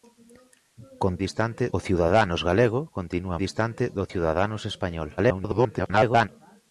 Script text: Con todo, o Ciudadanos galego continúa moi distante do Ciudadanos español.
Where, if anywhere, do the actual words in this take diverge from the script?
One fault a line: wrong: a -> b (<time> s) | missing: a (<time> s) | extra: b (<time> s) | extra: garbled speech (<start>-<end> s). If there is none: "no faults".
wrong: todo -> distante (1.3 s)
missing: moi (3.4 s)
extra: garbled speech (5.2-6.3 s)